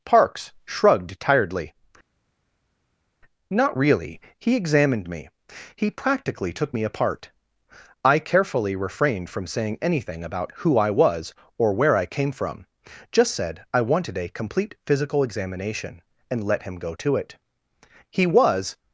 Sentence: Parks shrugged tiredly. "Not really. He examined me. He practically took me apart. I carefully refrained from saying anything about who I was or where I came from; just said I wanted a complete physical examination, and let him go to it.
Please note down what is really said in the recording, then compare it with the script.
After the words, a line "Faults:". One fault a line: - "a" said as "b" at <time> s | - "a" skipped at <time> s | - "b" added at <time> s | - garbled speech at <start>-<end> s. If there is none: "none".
Parks shrugged tiredly. "Not really. He examined me. He practically took me apart. I carefully refrained from saying anything about who I was or where I came from; just said I wanted a complete physical examination, and let him go to it. He was
Faults:
- "He was" added at 18.1 s